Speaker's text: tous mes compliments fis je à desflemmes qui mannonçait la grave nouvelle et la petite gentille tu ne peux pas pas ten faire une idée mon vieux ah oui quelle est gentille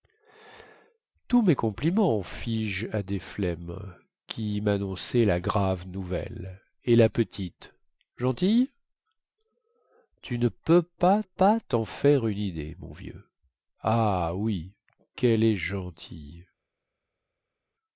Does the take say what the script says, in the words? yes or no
yes